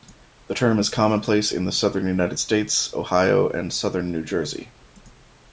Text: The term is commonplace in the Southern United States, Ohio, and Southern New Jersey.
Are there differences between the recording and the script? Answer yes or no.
no